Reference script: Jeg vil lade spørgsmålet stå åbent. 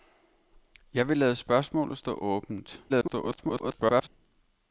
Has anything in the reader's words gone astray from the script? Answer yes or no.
yes